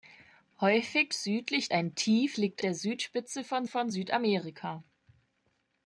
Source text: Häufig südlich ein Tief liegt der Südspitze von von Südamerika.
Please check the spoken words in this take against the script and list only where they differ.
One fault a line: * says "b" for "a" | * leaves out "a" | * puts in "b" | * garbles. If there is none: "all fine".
all fine